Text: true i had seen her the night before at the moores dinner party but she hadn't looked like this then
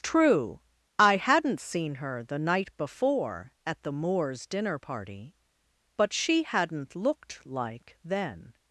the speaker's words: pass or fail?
fail